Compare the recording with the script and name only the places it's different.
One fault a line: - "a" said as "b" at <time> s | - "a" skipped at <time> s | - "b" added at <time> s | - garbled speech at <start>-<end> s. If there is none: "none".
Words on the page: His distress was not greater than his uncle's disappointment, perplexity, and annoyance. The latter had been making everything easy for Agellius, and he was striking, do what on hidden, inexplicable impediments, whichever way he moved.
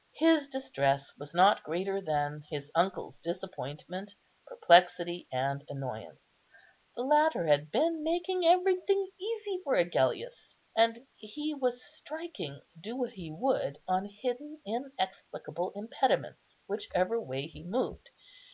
- "he would" added at 13.1 s